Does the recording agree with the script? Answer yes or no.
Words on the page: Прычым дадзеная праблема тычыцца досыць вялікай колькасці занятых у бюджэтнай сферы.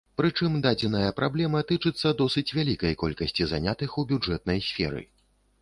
yes